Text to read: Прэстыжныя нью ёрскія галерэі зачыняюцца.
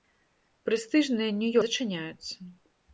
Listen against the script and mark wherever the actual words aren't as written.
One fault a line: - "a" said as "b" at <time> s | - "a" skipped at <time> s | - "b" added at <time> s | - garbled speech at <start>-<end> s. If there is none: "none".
- "ёрскія галерэі" skipped at 1.5 s